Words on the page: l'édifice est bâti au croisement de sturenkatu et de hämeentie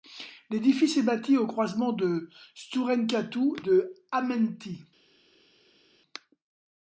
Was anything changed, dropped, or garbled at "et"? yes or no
yes